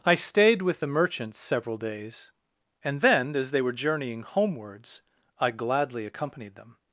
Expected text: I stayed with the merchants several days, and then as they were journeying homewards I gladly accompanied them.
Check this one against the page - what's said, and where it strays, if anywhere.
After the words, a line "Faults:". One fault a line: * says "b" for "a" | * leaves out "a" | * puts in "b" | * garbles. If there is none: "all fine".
I stayed with the merchants several days, and then as they were journeying homewards I gladly accompanied them.
Faults:
all fine